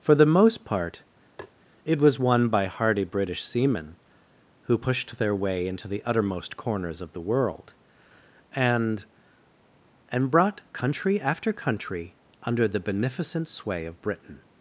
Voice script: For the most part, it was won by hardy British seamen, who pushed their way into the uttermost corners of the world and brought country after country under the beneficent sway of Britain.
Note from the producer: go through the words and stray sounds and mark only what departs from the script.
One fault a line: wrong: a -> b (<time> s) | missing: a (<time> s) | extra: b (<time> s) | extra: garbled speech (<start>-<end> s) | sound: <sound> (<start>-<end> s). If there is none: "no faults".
sound: tap (1.4-1.5 s)
extra: and (10.1 s)